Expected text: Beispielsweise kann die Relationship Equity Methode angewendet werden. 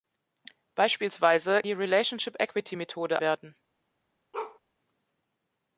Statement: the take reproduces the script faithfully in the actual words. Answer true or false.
false